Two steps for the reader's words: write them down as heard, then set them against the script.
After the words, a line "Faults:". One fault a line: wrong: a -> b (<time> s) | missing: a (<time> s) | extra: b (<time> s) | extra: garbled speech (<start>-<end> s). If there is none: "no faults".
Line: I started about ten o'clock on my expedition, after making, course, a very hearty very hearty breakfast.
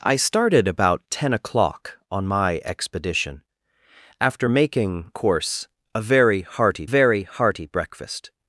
I started about ten o'clock on my expedition, after making, course, a very hearty very hearty breakfast.
Faults:
no faults